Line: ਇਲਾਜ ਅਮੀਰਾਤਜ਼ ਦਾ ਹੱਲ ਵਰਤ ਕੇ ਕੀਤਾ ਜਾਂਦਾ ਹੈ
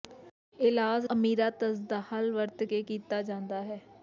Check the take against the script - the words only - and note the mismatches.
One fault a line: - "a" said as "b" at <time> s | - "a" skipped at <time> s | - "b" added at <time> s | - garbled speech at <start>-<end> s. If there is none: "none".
none